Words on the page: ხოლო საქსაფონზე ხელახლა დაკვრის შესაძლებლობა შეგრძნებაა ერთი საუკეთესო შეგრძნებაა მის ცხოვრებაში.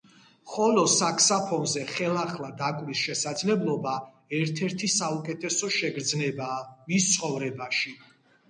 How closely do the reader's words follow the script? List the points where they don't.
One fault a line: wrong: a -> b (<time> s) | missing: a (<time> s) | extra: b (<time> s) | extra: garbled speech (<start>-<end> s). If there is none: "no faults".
wrong: შეგრძნებაა -> ერთ (4.4 s)